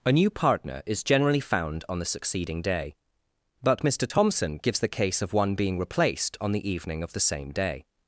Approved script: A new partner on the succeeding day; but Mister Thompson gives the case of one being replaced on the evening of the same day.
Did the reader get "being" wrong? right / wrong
right